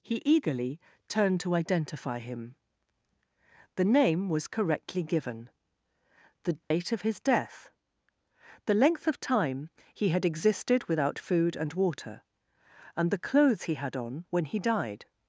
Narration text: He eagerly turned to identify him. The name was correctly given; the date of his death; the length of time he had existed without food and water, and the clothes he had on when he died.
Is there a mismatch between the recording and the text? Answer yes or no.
no